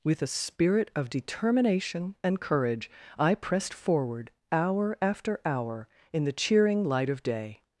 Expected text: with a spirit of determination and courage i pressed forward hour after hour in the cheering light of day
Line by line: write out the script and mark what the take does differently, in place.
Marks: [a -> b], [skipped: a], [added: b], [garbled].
with a spirit of determination and courage i pressed forward hour after hour in the cheering light of day